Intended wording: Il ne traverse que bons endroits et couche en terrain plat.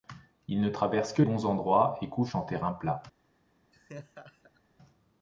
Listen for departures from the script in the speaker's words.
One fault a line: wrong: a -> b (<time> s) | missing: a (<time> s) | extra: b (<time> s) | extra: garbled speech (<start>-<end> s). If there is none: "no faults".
no faults